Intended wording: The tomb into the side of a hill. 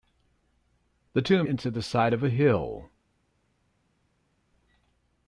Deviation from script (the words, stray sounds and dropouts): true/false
false